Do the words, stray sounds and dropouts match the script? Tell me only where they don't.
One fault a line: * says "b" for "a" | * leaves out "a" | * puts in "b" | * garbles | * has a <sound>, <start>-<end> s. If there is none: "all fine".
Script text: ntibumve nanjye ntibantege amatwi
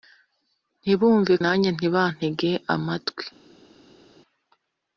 all fine